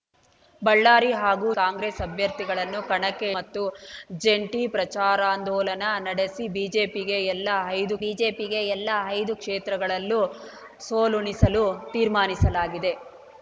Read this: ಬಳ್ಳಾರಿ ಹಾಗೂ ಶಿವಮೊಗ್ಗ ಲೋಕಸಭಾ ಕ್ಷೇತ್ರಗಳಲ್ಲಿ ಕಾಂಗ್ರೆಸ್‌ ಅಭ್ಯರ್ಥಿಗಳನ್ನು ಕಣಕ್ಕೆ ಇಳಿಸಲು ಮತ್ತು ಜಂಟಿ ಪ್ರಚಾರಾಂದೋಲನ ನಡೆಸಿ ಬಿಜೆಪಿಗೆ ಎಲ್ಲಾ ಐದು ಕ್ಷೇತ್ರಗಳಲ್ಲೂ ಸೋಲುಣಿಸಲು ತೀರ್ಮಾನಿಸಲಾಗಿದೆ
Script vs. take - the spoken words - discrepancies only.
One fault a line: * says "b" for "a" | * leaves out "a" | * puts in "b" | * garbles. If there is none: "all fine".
* leaves out "ಶಿವಮೊಗ್ಗ ಲೋಕಸಭಾ ಕ್ಷೇತ್ರಗಳಲ್ಲಿ"
* leaves out "ಇಳಿಸಲು"
* puts in "ಬಿಜೆಪಿಗೆ ಎಲ್ಲಾ ಐದು"